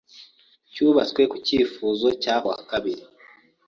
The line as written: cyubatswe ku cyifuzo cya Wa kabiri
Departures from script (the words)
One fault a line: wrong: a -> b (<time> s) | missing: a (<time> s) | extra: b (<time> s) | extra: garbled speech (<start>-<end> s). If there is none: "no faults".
no faults